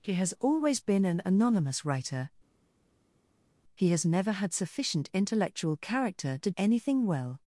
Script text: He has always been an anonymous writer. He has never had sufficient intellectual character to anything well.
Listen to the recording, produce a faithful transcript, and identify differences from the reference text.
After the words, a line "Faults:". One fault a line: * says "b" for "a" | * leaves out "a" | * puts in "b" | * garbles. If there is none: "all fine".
He has always been an anonymous writer. He has never had sufficient intellectual character to anything well.
Faults:
all fine